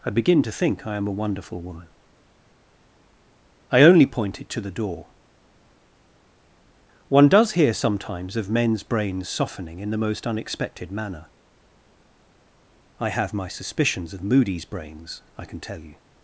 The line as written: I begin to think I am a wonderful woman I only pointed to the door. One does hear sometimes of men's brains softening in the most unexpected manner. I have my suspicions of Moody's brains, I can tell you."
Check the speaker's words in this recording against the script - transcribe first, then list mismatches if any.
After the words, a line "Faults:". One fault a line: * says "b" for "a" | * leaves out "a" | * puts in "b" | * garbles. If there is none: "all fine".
I begin to think I am a wonderful woman I only pointed to the door. One does hear sometimes of men's brains softening in the most unexpected manner. I have my suspicions of Moody's brains, I can tell you."
Faults:
all fine